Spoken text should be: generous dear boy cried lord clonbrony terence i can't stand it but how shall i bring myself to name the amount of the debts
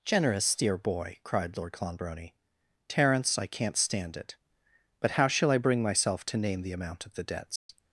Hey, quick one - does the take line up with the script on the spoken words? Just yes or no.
yes